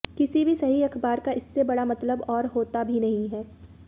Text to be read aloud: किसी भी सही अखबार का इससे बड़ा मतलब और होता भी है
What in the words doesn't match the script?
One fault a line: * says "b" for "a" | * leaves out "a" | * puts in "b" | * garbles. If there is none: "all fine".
* puts in "नहीं"